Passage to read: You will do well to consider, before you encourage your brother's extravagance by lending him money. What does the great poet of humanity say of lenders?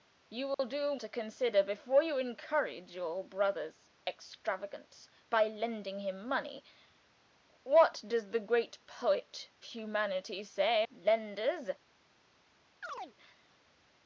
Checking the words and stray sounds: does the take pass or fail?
fail